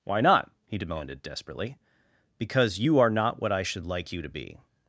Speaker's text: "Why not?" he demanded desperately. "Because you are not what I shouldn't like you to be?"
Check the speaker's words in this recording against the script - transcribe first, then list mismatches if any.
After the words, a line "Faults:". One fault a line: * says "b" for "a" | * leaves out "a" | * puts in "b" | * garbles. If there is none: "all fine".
"Why not?" he demanded desperately. "Because you are not what I should like you to be?"
Faults:
* says "should" for "shouldn't"